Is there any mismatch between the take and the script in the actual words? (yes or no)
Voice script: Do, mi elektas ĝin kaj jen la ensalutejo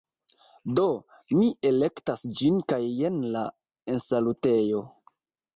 no